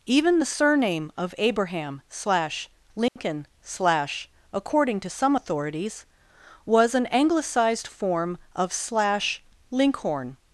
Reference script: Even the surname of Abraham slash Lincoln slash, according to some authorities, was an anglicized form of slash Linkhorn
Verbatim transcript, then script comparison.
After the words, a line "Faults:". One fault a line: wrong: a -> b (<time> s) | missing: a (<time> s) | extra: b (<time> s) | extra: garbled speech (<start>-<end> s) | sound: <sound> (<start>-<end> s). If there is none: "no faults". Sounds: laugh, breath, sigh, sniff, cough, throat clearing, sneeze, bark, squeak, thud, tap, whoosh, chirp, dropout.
Even the surname of Abraham slash Lincoln slash, according to some authorities, was an anglicized form of slash Linkhorn
Faults:
sound: dropout (3.1-3.2 s)